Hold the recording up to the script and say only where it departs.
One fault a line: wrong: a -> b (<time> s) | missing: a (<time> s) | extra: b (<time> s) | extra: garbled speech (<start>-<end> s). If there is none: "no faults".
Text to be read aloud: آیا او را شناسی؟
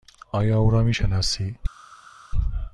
extra: می (0.8 s)